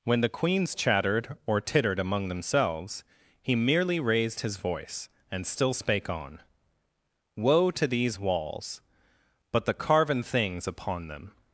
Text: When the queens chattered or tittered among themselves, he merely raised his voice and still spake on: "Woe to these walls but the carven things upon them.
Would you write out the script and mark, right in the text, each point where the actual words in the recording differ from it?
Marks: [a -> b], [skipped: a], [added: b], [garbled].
When the queens chattered or tittered among themselves, he merely raised his voice and still spake on: "Woe to these walls but the carven things upon them.